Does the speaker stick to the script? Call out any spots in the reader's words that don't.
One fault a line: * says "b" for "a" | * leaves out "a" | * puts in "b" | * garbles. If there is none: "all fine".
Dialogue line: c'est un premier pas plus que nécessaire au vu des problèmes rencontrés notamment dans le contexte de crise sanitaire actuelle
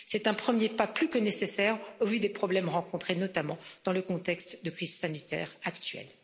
all fine